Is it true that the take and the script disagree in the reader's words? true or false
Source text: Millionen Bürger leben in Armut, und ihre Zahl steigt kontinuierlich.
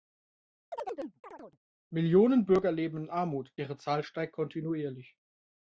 true